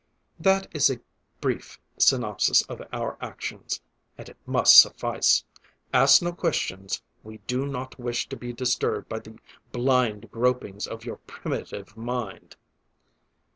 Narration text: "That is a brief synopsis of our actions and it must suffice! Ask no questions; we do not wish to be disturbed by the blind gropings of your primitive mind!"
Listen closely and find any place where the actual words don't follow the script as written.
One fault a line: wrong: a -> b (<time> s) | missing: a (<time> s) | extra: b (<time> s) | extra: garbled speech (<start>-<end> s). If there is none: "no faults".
no faults